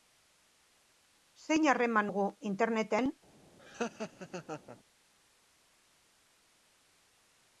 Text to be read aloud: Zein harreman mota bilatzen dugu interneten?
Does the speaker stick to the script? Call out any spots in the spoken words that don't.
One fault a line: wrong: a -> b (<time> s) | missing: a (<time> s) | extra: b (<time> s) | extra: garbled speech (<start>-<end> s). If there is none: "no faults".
missing: mota bilatzen (2.1 s)